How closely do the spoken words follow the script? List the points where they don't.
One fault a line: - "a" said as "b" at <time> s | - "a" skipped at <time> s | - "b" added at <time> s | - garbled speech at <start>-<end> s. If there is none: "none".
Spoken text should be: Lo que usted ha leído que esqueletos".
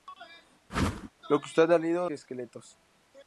none